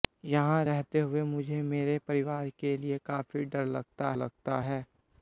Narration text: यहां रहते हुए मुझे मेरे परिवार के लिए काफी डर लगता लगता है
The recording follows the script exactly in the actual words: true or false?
true